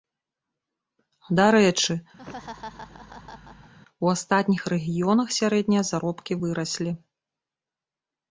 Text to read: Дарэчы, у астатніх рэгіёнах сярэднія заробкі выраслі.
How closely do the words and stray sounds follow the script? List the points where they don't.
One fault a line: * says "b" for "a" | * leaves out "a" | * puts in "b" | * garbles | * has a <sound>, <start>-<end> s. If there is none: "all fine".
* has a laugh, 2.2-3.7 s